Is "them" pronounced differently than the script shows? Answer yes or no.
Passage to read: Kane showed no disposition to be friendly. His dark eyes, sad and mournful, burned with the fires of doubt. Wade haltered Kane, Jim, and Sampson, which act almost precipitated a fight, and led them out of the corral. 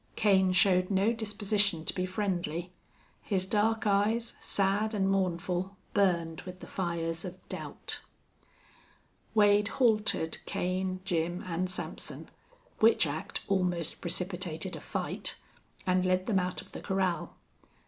no